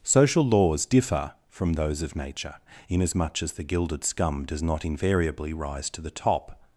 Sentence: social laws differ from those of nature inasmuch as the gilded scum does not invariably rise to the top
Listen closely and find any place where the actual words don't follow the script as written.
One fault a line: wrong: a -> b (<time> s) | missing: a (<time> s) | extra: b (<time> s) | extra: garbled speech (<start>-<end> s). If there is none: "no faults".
no faults